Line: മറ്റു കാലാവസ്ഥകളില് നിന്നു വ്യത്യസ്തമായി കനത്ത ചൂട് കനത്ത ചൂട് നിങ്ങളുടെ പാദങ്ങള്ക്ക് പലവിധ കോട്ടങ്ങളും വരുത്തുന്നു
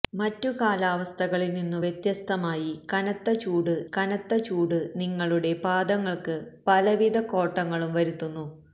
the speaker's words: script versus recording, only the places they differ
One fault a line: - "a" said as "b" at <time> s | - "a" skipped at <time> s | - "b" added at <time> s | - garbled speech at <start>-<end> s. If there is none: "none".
none